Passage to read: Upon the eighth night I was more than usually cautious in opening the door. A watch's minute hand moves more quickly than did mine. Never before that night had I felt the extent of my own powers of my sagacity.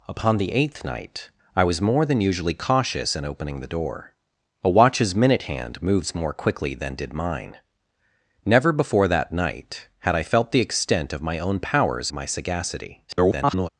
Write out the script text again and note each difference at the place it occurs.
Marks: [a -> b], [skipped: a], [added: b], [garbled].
Upon the eighth night I was more than usually cautious in opening the door. A watch's minute hand moves more quickly than did mine. Never before that night had I felt the extent of my own powers [skipped: of] my sagacity. [garbled]